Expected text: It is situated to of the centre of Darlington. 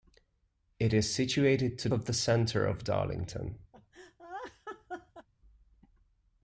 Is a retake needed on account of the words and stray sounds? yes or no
yes